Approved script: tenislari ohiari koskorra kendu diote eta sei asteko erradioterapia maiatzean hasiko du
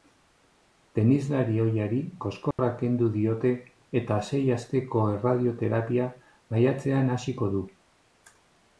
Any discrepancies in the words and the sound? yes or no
yes